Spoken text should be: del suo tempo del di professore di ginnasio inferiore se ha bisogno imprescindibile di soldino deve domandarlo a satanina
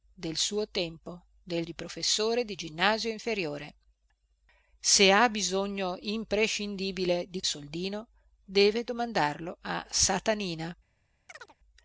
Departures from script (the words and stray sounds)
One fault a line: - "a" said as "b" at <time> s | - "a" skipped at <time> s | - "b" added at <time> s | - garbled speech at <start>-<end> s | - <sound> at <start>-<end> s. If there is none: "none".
- chirp at 11.3-11.6 s